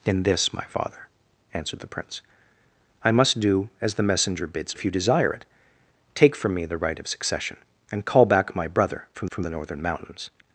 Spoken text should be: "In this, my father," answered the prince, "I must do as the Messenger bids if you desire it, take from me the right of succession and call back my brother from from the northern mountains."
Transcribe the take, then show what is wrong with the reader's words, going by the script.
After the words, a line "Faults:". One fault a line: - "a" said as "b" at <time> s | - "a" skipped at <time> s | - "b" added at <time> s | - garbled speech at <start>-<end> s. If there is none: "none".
"In this, my father," answered the prince, "I must do as the Messenger bids if you desire it, take from me the right of succession and call back my brother from from the northern mountains."
Faults:
none